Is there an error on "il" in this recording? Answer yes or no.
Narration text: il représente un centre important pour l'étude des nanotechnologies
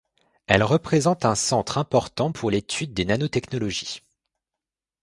yes